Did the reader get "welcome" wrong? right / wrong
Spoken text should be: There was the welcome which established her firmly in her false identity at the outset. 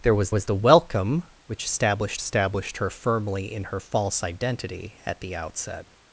right